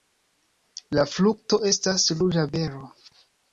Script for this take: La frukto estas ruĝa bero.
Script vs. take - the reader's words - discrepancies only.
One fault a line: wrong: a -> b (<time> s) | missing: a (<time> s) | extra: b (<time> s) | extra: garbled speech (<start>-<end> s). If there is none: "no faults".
no faults